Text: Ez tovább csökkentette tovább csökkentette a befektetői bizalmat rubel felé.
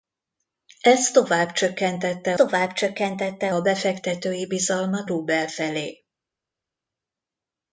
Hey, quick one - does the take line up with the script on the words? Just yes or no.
yes